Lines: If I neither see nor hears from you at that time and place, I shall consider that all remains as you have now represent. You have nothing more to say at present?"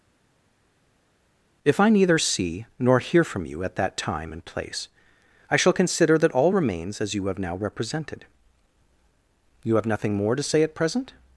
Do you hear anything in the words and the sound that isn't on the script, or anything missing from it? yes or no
yes